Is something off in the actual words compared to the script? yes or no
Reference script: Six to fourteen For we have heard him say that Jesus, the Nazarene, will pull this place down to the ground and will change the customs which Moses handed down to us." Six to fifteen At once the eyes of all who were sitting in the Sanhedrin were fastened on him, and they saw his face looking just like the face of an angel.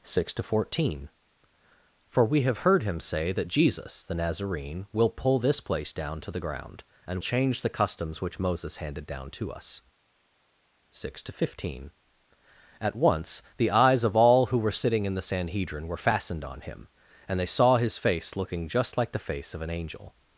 yes